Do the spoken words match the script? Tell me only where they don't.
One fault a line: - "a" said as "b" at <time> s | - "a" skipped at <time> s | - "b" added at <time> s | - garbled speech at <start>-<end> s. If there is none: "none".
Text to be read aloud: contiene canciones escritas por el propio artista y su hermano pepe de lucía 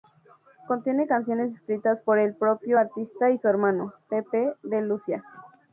none